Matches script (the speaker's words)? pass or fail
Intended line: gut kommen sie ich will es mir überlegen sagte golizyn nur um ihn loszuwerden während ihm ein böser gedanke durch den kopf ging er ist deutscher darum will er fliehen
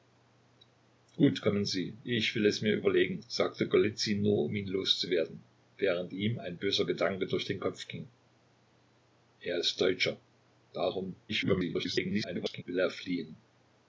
fail